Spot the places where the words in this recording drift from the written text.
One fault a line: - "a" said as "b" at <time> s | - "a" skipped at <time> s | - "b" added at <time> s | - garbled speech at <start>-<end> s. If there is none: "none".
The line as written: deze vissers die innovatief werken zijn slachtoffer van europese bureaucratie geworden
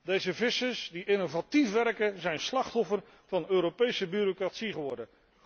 none